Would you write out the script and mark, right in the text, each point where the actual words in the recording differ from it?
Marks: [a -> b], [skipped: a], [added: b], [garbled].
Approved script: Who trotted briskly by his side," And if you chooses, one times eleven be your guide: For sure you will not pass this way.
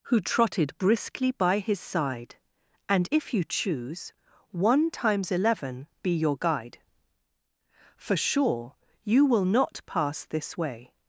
Who trotted briskly by his side," And if you [chooses, -> choose] one times eleven be your guide: For sure you will not pass this way.